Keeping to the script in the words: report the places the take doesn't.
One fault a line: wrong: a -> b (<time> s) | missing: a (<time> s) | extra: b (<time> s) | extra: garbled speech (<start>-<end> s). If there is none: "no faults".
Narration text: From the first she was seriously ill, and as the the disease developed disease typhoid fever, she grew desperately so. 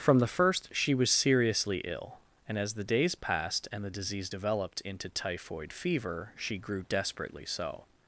extra: days passed and (2.8 s)
wrong: disease -> into (4.8 s)